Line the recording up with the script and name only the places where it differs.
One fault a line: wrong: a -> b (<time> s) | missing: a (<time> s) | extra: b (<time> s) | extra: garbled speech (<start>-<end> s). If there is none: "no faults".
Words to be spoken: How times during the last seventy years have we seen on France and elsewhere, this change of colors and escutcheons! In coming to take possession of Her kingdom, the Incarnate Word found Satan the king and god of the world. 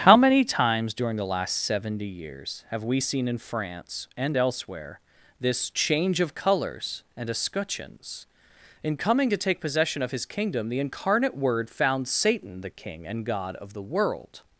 extra: many (0.2 s)
wrong: on -> in (3.3 s)
wrong: Her -> His (10.1 s)